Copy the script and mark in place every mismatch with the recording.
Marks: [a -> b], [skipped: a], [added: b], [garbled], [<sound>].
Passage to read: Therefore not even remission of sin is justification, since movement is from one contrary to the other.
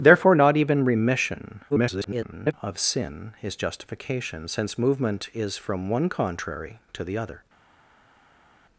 Therefore not even remission [garbled] of sin is justification, since movement is from one contrary to the other.